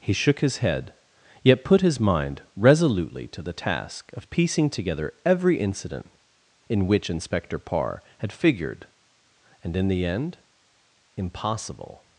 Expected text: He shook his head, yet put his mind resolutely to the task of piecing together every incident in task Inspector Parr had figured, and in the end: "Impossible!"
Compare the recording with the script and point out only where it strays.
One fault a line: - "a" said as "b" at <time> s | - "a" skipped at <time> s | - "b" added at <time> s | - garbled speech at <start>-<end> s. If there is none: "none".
- "task" said as "which" at 6.9 s